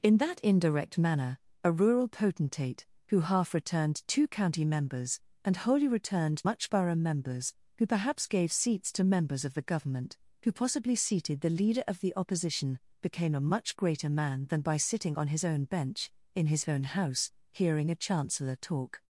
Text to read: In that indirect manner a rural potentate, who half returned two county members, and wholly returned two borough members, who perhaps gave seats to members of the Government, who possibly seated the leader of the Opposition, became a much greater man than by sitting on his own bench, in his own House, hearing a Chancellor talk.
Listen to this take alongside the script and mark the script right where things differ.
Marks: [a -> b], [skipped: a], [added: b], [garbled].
In that indirect manner a rural potentate, who half returned two county members, and wholly returned [two -> much] borough members, who perhaps gave seats to members of the Government, who possibly seated the leader of the Opposition, became a much greater man than by sitting on his own bench, in his own House, hearing a Chancellor talk.